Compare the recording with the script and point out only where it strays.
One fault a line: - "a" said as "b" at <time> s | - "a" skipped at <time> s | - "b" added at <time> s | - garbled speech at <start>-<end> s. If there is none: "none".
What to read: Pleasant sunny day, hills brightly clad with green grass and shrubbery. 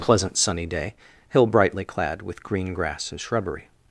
- "hills" said as "hill" at 1.3 s